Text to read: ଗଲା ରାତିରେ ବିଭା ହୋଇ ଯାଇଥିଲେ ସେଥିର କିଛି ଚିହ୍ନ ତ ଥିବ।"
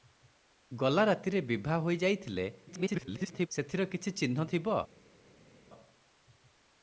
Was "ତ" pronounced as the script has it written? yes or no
no